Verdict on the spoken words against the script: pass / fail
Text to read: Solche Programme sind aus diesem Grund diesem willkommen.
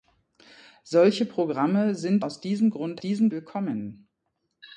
pass